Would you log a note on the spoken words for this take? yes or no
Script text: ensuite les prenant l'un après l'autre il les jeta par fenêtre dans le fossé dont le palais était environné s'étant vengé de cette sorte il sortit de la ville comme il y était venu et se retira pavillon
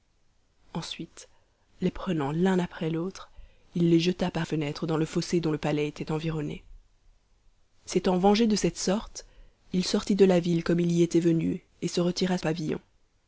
no